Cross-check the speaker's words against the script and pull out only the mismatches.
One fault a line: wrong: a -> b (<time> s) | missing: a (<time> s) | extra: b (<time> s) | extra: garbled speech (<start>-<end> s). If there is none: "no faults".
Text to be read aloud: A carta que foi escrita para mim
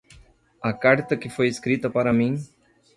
no faults